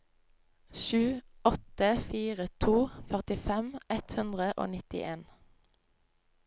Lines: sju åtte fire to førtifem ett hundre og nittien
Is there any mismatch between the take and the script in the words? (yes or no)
no